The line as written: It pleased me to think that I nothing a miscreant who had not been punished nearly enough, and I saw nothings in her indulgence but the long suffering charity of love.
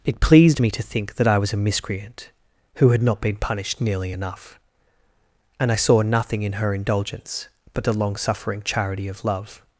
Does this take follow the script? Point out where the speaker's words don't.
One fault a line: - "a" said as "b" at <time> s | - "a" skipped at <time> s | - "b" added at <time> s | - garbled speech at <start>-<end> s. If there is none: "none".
- "nothing" said as "was" at 1.4 s
- "nothings" said as "nothing" at 6.0 s